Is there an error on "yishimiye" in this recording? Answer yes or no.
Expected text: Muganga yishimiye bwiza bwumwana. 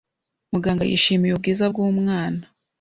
no